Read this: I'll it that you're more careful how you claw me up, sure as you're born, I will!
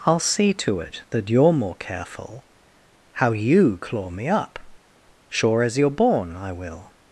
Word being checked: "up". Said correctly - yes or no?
yes